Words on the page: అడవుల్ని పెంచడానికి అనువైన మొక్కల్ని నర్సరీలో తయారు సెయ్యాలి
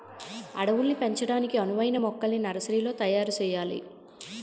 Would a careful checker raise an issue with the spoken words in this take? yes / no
no